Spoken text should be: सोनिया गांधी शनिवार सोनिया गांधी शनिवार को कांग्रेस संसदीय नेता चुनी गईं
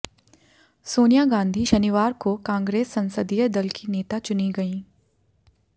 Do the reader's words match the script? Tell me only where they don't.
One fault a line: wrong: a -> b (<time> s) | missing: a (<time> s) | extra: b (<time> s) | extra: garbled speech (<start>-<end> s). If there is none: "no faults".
missing: सोनिया गांधी शनिवार (2.1 s)
extra: दल की (3.5 s)